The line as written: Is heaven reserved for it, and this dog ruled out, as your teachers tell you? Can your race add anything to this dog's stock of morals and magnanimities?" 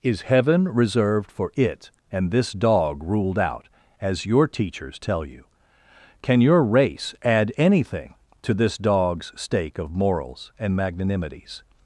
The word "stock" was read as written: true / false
false